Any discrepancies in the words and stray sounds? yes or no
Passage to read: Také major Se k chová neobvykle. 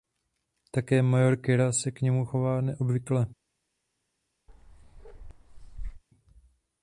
yes